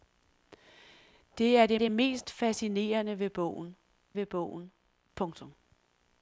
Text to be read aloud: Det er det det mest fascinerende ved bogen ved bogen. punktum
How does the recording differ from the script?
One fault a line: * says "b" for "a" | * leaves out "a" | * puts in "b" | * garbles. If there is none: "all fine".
all fine